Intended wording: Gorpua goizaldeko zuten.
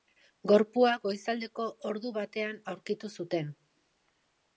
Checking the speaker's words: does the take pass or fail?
fail